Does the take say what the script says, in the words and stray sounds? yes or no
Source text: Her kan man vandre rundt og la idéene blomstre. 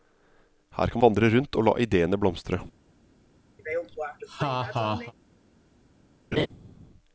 no